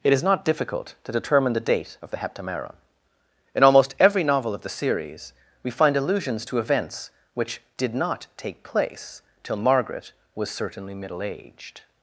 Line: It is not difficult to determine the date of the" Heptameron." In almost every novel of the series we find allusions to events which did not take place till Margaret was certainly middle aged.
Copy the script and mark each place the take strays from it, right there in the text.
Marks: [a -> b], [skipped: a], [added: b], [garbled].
It is not difficult to determine the date of the" Heptameron." In almost every novel of the series we find allusions to events which did not take place till Margaret was certainly middle aged.